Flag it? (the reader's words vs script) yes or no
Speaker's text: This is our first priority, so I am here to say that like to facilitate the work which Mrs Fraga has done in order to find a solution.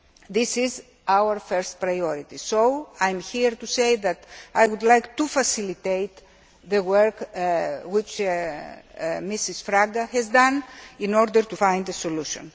yes